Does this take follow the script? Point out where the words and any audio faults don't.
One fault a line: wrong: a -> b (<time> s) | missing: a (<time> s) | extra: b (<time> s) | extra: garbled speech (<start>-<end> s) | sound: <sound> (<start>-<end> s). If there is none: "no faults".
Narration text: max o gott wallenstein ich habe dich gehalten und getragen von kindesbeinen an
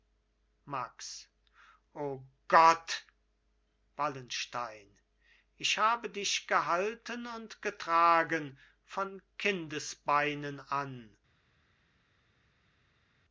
no faults